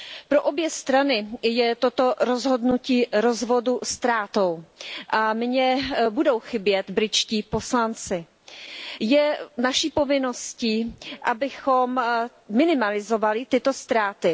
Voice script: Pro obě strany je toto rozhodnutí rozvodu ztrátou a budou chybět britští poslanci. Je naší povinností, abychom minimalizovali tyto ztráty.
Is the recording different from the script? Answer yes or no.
yes